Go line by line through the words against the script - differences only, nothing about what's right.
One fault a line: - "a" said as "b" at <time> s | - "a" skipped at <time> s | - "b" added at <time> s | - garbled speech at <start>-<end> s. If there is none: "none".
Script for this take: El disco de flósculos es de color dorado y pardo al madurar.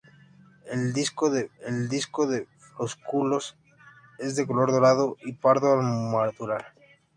- "el disco de" added at 1.6 s